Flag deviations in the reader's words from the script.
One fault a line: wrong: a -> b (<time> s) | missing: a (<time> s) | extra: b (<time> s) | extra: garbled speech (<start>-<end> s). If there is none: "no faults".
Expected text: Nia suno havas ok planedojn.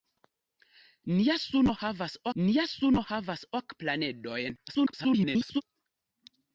extra: nia suno havas (2.4 s)
extra: garbled speech (4.7-5.6 s)